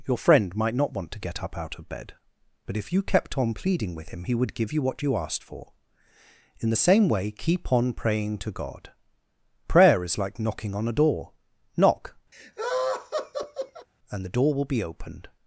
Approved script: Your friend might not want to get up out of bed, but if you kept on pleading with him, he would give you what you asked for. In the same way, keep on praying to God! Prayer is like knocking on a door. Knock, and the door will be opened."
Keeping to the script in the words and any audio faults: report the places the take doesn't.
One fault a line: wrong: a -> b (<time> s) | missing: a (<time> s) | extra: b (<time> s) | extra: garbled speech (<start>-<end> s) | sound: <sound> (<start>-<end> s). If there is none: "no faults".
sound: laugh (12.3-13.9 s)